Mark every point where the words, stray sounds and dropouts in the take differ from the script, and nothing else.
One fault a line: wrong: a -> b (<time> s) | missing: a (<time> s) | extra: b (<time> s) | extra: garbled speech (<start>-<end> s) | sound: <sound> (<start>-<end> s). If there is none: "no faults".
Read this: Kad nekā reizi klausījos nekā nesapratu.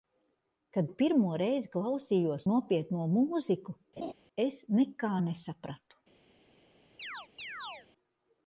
wrong: nekā -> pirmo (1.0 s)
extra: nopietno mūziku es (2.5 s)
sound: laugh (4.0-4.1 s)
sound: chirp (7.0-7.9 s)